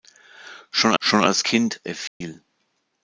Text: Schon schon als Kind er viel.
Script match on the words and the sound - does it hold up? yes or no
no